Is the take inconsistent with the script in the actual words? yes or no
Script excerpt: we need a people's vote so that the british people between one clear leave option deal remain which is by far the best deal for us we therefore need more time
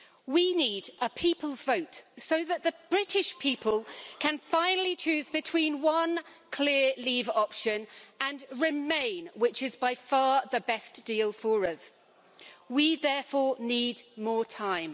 yes